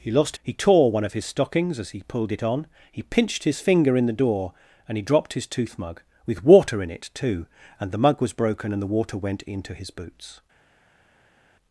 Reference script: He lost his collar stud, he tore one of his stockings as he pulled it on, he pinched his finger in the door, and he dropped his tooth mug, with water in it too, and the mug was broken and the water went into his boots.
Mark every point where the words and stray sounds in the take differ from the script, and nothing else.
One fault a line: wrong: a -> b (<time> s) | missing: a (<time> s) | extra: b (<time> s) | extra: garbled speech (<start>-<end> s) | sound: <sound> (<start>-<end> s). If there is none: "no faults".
missing: his collar stud (0.4 s)